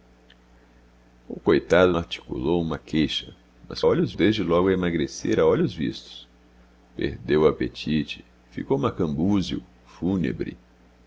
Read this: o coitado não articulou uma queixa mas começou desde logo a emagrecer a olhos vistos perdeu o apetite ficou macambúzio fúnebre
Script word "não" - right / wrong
wrong